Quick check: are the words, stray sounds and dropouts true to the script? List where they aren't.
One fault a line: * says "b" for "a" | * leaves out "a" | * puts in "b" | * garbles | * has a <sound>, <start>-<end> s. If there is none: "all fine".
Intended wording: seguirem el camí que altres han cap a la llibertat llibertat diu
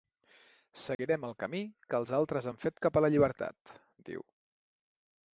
* has a dropout, 0.9-1.0 s
* puts in "els"
* puts in "fet"
* leaves out "llibertat"